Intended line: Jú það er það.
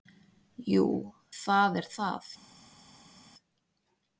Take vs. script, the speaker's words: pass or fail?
pass